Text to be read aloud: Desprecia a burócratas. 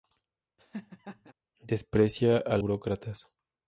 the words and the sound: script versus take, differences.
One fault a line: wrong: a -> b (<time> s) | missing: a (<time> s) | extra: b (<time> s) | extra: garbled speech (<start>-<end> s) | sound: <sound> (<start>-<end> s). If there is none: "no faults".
sound: laugh (0.6-1.3 s)